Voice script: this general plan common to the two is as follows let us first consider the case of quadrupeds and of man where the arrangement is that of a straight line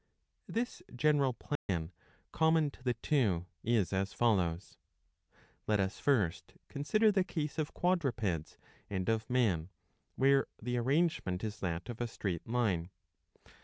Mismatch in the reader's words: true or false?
false